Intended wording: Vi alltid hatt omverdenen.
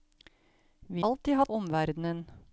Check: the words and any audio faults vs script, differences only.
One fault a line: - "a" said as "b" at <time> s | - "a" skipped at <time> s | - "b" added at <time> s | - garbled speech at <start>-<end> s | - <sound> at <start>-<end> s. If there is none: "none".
none